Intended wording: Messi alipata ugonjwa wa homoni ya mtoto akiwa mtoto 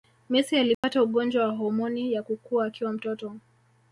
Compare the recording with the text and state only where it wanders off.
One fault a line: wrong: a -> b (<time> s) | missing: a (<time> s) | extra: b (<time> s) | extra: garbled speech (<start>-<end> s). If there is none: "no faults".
wrong: mtoto -> kukua (2.2 s)